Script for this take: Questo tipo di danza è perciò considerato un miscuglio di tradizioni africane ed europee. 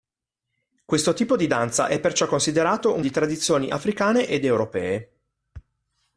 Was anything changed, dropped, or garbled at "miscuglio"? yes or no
yes